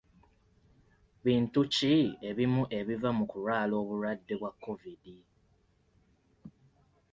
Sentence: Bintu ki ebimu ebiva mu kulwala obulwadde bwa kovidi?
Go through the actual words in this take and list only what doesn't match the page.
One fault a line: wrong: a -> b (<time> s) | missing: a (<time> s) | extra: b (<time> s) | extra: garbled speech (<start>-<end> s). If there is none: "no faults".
no faults